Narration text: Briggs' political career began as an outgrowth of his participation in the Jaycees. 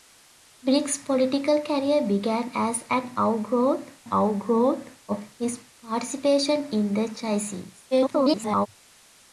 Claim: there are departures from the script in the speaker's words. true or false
true